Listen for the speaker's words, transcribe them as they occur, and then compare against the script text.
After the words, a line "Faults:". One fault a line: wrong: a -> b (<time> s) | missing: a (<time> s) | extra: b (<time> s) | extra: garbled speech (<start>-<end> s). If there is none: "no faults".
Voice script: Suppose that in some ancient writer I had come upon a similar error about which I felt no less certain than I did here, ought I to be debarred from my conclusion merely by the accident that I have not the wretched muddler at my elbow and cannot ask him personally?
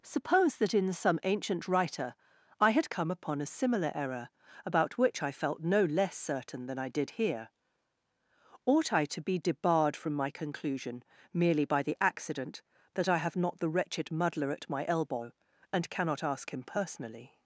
Suppose that in some ancient writer I had come upon a similar error about which I felt no less certain than I did here, ought I to be debarred from my conclusion merely by the accident that I have not the wretched muddler at my elbow and cannot ask him personally?
Faults:
no faults